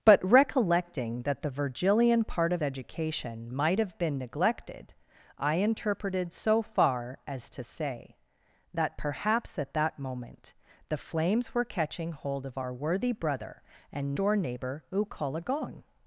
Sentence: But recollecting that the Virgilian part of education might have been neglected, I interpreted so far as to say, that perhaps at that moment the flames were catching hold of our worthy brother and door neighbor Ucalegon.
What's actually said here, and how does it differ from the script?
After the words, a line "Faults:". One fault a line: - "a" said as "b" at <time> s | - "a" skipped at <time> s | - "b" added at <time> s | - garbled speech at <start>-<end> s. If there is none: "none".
But recollecting that the Virgilian part of education might have been neglected, I interpreted so far as to say, that perhaps at that moment the flames were catching hold of our worthy brother and door neighbor Ucalegon.
Faults:
none